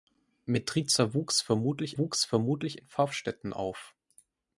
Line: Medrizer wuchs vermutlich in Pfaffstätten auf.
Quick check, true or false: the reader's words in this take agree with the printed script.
false